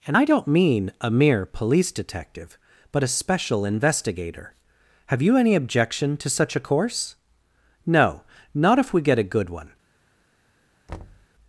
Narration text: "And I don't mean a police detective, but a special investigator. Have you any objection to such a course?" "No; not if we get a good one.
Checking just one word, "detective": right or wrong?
right